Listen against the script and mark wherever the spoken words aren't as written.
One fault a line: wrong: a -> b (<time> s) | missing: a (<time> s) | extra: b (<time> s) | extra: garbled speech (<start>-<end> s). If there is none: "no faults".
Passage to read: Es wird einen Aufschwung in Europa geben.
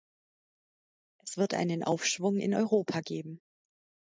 no faults